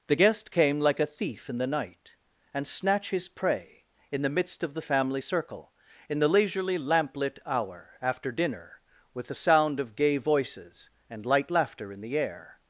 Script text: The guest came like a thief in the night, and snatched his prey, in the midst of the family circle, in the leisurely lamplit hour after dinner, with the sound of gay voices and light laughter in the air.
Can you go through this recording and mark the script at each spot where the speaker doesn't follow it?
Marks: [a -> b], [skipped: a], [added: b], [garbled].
The guest came like a thief in the night, and [snatched -> snatch] his prey, in the midst of the family circle, in the leisurely lamplit hour after dinner, with the sound of gay voices and light laughter in the air.